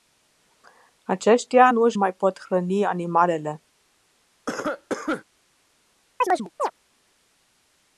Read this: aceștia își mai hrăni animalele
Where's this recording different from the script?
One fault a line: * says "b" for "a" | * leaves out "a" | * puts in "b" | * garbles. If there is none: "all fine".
* puts in "nu"
* puts in "pot"